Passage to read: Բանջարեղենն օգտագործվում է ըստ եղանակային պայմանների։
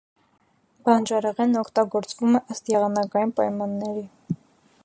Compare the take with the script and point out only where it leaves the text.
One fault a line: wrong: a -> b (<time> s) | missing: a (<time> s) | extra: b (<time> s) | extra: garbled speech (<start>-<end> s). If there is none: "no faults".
no faults